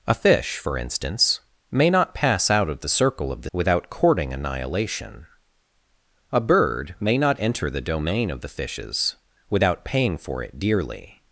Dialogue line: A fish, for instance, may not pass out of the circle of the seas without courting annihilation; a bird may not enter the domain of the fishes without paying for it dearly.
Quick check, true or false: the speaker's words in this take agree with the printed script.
false